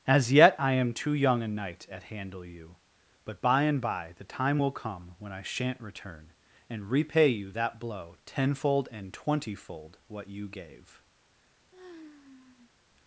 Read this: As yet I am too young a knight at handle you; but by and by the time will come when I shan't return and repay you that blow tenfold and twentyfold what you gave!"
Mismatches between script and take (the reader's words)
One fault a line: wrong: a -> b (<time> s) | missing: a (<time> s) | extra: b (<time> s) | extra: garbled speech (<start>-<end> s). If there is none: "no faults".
no faults